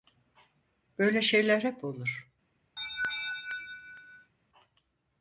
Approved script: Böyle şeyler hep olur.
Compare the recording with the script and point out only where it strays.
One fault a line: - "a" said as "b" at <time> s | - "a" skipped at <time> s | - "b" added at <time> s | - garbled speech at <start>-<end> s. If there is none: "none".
none